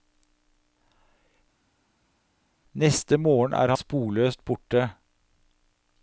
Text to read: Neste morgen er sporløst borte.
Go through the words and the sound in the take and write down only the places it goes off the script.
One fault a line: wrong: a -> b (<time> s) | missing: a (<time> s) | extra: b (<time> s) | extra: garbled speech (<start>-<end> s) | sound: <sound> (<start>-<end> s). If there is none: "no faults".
no faults